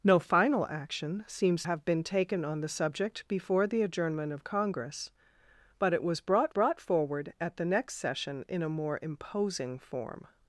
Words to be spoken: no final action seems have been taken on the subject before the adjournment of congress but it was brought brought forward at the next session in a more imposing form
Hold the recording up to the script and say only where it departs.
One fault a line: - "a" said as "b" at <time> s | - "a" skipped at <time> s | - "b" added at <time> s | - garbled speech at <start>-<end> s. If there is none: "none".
none